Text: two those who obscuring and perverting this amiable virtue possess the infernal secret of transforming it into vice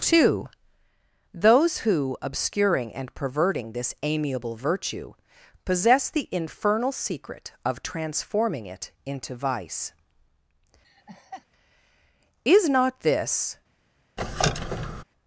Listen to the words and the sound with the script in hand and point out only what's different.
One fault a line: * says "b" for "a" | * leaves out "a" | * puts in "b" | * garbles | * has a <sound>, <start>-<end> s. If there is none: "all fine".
* has a laugh, 10.8-11.5 s
* puts in "is not this"
* has a squeak, 14.2-15.0 s